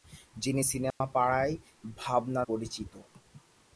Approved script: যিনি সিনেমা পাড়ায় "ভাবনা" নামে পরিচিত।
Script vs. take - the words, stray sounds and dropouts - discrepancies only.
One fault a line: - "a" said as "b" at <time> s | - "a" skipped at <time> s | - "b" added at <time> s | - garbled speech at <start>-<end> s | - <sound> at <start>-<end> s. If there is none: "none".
- dropout at 0.9-1.0 s
- "নামে" skipped at 2.4 s